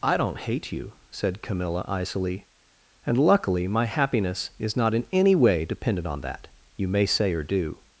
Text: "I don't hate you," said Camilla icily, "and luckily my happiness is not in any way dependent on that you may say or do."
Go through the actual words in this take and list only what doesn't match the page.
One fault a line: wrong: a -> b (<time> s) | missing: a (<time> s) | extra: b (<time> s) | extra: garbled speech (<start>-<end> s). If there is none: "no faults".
no faults